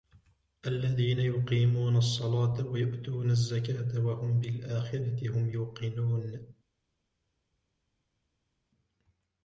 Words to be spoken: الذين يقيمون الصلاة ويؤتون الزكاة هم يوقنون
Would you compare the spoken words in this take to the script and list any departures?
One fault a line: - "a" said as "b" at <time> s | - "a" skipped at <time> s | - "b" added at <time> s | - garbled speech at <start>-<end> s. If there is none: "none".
- "وهم بالآخرة" added at 4.0 s